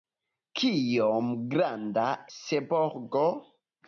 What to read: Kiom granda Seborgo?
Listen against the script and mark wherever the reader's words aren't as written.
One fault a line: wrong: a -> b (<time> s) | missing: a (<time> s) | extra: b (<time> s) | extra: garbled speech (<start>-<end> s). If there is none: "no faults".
no faults